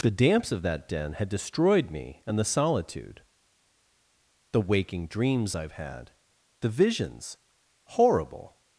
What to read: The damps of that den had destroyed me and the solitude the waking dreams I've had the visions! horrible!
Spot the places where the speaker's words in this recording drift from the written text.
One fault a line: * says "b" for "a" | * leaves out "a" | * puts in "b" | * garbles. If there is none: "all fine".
all fine